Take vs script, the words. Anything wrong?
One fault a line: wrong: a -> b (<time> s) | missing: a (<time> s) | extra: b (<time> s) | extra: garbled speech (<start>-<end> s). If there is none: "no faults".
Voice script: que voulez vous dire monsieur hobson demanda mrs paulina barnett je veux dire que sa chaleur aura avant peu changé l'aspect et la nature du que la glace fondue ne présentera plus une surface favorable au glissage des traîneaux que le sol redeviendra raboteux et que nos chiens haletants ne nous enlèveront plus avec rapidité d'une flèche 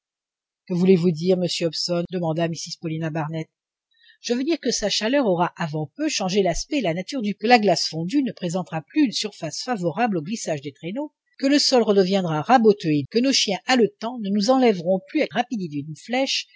no faults